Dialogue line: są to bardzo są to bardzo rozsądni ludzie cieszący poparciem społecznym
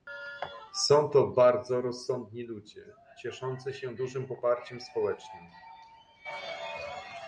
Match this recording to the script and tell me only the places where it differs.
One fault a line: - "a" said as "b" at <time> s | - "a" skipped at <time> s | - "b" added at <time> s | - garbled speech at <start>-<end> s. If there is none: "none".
- "są to bardzo" skipped at 1.8 s
- "się dużym" added at 3.7 s